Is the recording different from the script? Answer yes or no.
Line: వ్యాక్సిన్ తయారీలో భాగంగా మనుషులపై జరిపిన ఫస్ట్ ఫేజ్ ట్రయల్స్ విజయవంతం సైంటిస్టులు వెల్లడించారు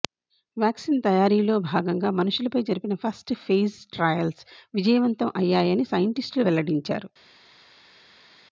yes